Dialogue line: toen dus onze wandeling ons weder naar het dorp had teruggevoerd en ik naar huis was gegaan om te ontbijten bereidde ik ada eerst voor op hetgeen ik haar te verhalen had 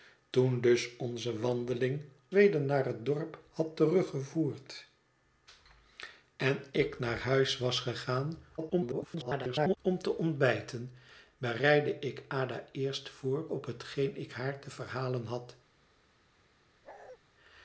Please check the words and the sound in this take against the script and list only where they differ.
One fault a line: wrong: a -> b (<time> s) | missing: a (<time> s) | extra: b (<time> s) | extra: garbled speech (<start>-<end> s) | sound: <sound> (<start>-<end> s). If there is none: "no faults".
missing: ons (2.0 s)
extra: garbled speech (8.6-9.8 s)
sound: bark (16.8-17.2 s)